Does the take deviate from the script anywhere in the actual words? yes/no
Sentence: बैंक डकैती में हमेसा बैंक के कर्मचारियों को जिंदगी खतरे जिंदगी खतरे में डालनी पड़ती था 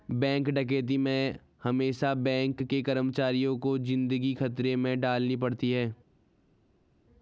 yes